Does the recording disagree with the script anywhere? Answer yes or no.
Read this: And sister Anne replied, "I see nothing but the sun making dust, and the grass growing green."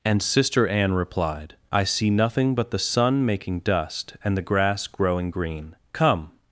yes